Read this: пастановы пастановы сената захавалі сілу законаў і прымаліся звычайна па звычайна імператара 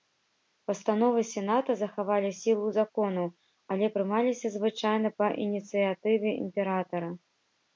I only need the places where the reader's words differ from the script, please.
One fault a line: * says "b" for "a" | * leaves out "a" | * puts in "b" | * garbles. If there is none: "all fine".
* leaves out "пастановы"
* says "але" for "і"
* says "ініцыятыве" for "звычайна"